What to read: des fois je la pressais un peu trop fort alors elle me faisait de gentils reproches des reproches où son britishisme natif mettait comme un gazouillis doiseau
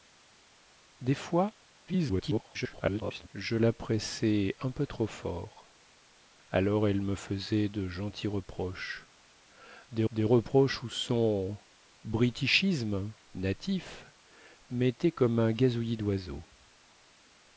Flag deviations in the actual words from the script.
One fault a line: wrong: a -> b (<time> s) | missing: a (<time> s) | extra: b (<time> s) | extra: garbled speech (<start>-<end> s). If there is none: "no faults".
extra: garbled speech (1.9-3.3 s)
extra: des (10.1 s)